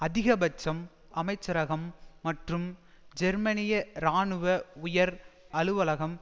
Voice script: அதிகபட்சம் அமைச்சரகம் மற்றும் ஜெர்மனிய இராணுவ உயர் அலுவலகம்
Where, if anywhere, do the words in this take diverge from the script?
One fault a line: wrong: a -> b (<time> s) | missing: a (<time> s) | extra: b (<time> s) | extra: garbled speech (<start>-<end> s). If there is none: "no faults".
no faults